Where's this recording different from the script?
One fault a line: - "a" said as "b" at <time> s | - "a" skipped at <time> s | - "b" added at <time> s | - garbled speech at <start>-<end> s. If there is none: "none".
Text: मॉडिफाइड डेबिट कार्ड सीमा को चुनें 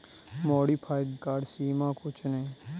- "डेबिट" skipped at 1.1 s